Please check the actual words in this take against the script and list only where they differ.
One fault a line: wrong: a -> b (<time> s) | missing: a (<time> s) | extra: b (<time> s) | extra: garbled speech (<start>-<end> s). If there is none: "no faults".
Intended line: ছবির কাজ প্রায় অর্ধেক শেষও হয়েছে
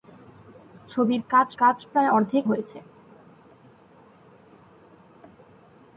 extra: কাজ (1.6 s)
missing: শেষও (2.4 s)